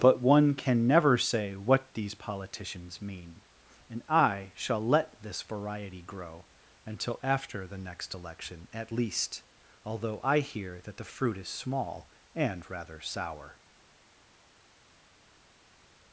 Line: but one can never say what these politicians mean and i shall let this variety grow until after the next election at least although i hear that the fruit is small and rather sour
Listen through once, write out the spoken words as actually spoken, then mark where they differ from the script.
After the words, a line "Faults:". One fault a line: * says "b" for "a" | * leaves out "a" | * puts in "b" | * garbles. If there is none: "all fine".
but one can never say what these politicians mean and i shall let this variety grow until after the next election at least although i hear that the fruit is small and rather sour
Faults:
all fine